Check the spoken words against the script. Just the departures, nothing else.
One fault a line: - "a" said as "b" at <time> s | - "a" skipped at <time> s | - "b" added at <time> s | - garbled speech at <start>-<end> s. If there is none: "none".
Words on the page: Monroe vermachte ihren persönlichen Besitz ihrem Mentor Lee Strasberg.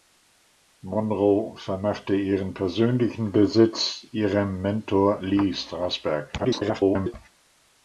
- garbled speech at 6.4-7.1 s